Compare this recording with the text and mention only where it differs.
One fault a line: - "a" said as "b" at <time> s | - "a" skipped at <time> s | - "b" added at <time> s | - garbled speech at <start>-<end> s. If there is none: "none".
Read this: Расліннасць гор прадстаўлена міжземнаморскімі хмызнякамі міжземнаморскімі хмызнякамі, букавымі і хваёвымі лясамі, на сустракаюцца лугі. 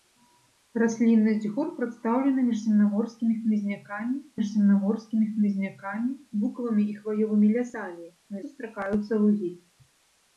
none